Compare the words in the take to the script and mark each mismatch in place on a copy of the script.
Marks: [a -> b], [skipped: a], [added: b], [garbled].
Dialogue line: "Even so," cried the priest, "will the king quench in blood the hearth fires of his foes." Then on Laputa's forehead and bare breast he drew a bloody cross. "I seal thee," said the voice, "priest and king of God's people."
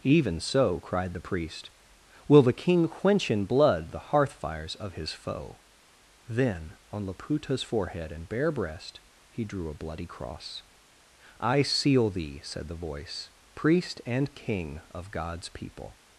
"Even so," cried the priest, "will the king quench in blood the hearth fires of his [foes." -> foe] Then on Laputa's forehead and bare breast he drew a bloody cross. "I seal thee," said the voice, "priest and king of God's people."